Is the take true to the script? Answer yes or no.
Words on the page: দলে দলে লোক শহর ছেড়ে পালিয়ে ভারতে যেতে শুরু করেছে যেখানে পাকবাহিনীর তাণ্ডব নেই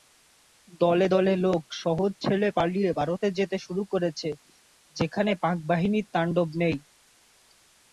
yes